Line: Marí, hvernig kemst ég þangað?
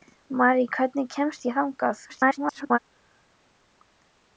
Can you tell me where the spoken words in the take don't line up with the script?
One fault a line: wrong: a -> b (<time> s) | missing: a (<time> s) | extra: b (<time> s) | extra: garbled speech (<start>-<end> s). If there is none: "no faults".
extra: garbled speech (2.1-2.8 s)